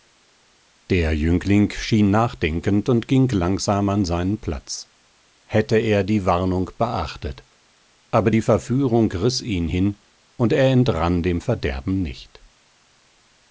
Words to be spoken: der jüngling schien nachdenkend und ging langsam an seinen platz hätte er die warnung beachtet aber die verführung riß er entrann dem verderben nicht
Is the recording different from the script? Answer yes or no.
yes